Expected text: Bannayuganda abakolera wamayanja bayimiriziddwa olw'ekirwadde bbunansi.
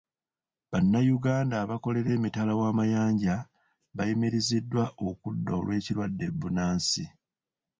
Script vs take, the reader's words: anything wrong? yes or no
yes